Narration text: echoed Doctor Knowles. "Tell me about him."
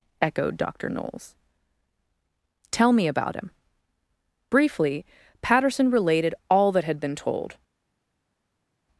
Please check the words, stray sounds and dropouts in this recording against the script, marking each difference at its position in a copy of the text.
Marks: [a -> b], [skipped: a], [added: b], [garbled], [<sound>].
echoed Doctor Knowles. "Tell me about him." [added: Briefly Patterson related all that had been told]